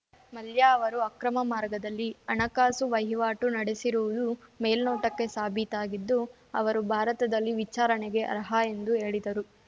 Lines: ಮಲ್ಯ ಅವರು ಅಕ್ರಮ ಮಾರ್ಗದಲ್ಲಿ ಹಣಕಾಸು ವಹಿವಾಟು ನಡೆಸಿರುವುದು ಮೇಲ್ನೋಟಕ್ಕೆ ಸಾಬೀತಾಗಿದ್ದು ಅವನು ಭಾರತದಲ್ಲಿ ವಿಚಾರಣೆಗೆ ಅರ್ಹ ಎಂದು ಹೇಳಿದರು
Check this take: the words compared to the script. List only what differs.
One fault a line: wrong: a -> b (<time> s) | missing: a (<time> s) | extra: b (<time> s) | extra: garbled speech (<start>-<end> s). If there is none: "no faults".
wrong: ಅವನು -> ಅವರು (6.5 s)